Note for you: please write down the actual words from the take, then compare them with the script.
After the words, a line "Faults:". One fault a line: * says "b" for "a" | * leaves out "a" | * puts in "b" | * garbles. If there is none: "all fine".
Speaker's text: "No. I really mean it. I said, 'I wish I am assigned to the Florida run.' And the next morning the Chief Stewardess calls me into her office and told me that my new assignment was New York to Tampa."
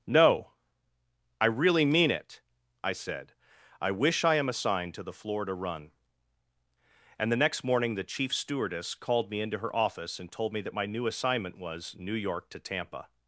"No. I really mean it. I said, 'I wish I am assigned to the Florida run.' And the next morning the Chief Stewardess called me into her office and told me that my new assignment was New York to Tampa."
Faults:
* says "called" for "calls"